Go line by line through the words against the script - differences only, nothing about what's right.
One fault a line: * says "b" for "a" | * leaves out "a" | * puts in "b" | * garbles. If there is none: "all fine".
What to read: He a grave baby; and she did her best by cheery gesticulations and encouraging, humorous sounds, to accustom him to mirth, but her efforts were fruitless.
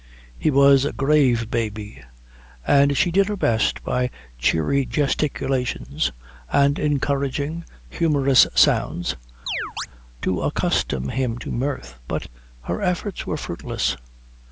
* puts in "was"